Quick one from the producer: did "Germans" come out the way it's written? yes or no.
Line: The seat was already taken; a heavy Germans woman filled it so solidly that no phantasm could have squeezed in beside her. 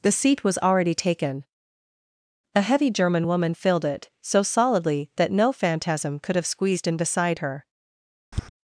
no